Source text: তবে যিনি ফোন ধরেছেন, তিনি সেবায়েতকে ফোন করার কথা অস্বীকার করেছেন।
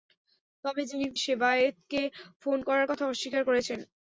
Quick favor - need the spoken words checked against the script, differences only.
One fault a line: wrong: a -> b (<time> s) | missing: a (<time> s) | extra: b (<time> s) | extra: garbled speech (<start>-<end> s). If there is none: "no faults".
missing: ফোন ধরেছেন তিনি (1.1 s)